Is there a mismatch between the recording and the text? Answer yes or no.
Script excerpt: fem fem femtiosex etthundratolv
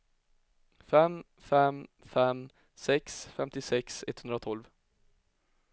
yes